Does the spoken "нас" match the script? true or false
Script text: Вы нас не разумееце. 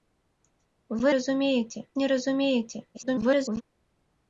false